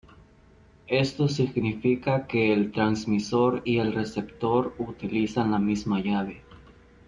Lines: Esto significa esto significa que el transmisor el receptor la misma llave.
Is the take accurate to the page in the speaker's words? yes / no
no